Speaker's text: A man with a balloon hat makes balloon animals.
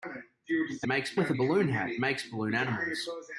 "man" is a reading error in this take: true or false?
true